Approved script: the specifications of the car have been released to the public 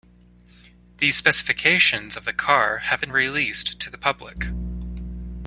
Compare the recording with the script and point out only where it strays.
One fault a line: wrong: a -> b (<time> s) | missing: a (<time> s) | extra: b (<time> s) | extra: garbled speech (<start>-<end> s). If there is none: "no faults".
no faults